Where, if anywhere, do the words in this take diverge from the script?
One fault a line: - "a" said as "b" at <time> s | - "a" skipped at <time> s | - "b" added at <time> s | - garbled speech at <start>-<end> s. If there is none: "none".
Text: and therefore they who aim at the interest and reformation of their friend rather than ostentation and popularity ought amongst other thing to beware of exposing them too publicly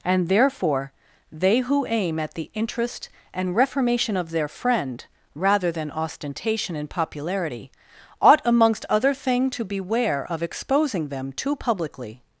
none